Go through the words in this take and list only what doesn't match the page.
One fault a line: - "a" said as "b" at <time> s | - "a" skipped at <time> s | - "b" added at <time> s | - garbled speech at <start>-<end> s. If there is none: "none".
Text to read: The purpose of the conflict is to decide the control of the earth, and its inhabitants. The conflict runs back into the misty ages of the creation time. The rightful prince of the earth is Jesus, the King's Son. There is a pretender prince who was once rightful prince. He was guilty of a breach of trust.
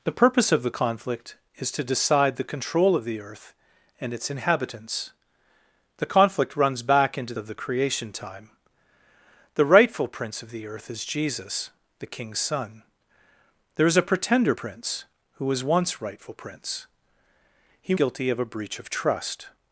- "the misty ages" skipped at 7.3 s
- "was" skipped at 17.9 s